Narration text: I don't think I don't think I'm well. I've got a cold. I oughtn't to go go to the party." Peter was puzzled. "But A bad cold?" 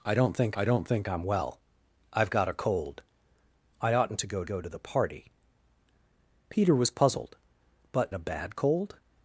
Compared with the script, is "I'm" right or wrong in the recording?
right